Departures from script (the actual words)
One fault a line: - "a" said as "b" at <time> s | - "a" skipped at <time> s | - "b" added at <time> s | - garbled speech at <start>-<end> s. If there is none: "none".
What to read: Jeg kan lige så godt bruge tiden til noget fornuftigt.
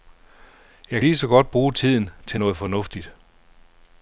- "kan" skipped at 1.0 s